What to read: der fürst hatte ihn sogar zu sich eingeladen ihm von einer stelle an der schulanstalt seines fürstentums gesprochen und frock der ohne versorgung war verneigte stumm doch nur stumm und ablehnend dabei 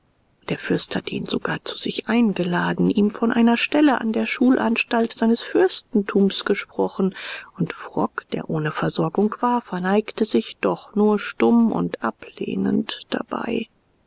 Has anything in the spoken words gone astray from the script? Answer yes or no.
yes